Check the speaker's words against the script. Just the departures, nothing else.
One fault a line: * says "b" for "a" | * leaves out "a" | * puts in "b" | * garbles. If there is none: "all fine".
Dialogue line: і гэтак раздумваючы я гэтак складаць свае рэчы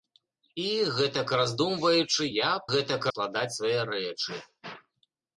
all fine